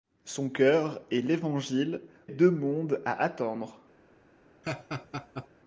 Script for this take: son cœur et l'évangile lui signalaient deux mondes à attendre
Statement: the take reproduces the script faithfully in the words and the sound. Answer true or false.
false